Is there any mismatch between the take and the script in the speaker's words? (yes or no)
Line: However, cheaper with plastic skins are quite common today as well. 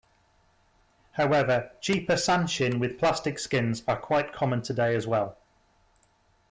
yes